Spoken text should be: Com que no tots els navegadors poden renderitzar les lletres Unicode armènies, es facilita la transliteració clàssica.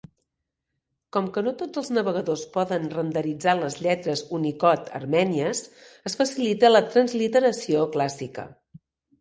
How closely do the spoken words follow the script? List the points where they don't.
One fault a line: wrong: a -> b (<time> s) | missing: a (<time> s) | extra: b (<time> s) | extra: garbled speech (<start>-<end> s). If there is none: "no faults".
no faults